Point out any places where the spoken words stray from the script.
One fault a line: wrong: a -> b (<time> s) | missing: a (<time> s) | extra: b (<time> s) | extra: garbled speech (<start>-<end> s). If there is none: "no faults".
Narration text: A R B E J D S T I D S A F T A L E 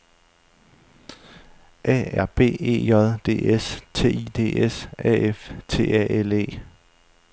no faults